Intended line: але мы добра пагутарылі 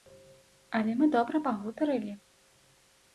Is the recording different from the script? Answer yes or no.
no